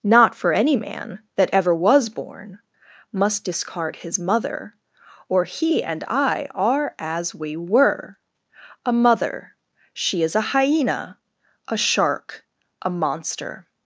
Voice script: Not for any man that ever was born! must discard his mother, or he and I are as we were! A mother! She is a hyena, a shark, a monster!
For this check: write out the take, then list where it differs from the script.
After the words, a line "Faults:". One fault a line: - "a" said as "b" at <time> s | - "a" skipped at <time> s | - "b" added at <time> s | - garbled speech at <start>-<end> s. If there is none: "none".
Not for any man that ever was born! must discard his mother, or he and I are as we were! A mother! She is a hyena, a shark, a monster!
Faults:
none